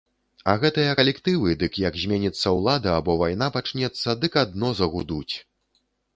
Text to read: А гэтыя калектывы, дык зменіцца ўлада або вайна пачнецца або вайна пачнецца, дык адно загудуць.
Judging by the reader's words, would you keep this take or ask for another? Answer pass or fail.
fail